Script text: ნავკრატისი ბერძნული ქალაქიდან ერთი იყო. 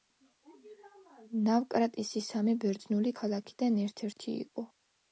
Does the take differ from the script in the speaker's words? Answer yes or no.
yes